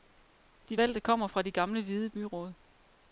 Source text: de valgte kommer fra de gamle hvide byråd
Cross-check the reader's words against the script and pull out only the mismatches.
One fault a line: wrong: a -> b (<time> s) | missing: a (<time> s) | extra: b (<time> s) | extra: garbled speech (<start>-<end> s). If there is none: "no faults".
no faults